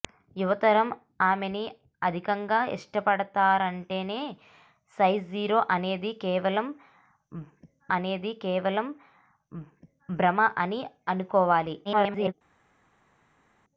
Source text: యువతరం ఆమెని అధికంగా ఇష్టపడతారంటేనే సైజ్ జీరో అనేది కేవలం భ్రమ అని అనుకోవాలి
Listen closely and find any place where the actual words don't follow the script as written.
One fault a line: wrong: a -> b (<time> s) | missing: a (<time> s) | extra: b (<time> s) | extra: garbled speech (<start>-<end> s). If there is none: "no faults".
extra: అనేది కేవలం (8.0 s)
extra: garbled speech (11.8-12.3 s)